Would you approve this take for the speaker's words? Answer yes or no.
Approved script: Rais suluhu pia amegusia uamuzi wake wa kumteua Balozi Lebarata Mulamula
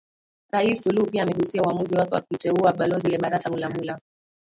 yes